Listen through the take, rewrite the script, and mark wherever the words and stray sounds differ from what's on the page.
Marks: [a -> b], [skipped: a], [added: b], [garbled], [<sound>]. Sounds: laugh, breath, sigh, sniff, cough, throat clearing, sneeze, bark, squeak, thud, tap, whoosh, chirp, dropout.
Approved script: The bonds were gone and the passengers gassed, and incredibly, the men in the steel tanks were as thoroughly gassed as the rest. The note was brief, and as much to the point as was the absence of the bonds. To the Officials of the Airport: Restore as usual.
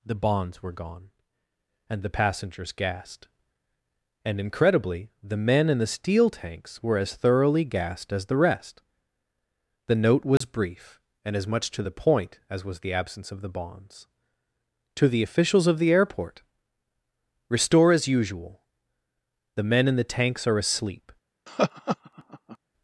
The bonds were gone and the passengers gassed, and incredibly, the men in the steel tanks were as thoroughly gassed as the rest. The note was [dropout] brief, and as much to the point as was the absence of the bonds. To the Officials of the Airport: Restore as usual. [added: The men in the tanks are asleep] [laugh]